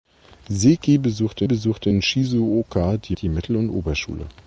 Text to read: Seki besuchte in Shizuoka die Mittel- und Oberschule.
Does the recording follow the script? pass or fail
fail